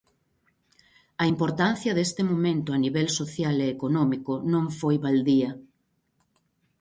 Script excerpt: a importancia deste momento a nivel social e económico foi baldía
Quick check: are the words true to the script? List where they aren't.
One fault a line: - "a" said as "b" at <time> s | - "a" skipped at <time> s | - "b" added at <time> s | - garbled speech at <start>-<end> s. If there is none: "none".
- "non" added at 4.5 s